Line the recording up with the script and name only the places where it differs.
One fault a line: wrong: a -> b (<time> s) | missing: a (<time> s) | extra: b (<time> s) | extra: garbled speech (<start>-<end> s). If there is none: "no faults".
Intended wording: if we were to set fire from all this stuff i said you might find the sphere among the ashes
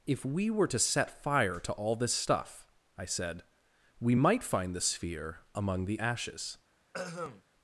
wrong: from -> to (1.6 s)
wrong: you -> we (4.0 s)